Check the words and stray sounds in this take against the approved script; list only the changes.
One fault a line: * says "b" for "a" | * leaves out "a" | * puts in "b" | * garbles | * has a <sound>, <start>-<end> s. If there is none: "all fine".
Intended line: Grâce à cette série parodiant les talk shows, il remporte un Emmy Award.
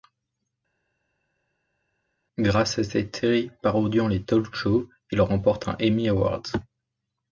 all fine